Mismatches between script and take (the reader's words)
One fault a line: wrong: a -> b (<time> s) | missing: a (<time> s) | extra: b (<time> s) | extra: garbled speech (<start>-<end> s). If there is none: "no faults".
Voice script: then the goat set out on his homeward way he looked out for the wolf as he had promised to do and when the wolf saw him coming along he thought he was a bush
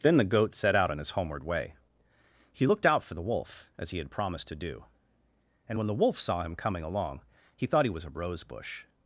extra: rose (8.1 s)